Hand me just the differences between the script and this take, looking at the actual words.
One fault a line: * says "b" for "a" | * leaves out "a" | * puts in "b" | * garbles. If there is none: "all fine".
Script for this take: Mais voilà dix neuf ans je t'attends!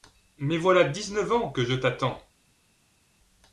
* puts in "que"